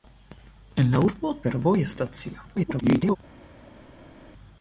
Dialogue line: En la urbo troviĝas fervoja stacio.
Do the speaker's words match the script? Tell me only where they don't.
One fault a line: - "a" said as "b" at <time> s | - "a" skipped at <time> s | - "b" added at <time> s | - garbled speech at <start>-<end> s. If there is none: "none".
- "troviĝas" skipped at 1.3 s
- garbled speech at 2.6-3.2 s